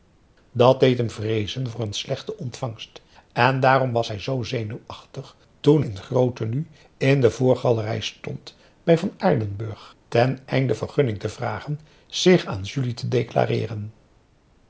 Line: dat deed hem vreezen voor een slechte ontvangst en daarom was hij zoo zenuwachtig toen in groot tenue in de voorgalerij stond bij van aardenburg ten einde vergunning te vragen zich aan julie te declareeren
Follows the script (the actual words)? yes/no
yes